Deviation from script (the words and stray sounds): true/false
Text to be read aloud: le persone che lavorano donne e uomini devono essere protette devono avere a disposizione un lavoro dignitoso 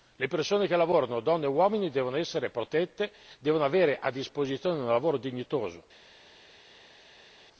false